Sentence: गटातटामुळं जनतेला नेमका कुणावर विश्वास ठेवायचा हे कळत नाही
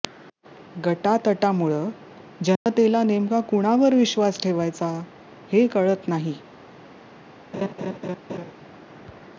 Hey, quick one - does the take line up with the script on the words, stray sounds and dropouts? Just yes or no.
no